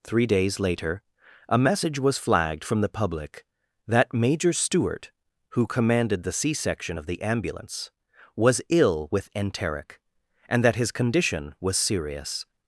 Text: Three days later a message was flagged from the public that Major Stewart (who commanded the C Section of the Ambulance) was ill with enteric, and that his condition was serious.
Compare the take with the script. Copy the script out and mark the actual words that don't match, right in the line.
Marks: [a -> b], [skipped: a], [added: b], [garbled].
Three days later a message was flagged from the public that Major Stewart (who commanded the C Section of the Ambulance) was ill with enteric, and that his condition was serious.